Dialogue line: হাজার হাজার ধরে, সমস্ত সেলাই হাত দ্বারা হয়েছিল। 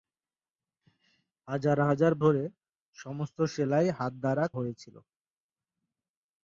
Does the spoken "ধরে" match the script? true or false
true